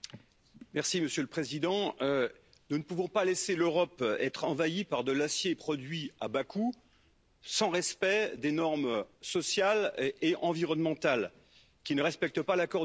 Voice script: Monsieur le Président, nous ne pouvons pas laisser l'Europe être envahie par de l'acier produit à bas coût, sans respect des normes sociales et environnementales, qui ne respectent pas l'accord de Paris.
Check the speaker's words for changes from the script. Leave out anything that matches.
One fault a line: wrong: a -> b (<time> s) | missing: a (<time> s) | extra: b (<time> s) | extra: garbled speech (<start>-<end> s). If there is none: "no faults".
no faults